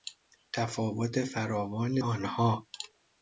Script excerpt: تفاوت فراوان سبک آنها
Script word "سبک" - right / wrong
wrong